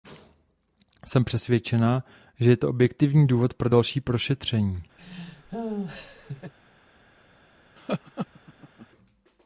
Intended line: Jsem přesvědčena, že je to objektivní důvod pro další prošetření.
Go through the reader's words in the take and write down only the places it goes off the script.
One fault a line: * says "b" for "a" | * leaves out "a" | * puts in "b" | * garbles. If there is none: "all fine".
all fine